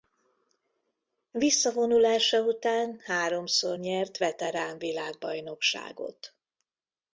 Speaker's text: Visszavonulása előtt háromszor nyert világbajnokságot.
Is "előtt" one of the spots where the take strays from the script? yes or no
yes